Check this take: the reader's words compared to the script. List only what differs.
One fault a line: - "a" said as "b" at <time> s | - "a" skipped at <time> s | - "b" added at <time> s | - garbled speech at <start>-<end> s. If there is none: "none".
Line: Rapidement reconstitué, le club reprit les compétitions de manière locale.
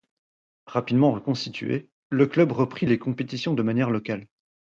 none